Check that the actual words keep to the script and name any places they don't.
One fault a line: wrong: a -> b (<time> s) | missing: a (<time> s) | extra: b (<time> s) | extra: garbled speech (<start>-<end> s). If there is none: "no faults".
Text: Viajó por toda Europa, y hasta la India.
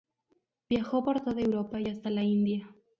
no faults